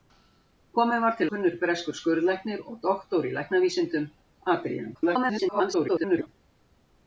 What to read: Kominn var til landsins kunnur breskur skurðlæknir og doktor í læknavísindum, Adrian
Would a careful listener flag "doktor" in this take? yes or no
no